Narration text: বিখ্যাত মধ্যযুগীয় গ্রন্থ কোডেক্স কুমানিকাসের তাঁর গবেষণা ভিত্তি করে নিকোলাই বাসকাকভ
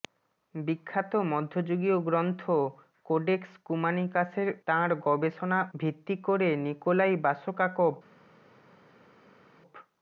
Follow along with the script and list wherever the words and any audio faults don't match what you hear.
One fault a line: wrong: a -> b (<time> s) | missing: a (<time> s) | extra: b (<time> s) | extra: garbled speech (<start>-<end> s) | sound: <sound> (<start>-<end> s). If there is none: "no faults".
no faults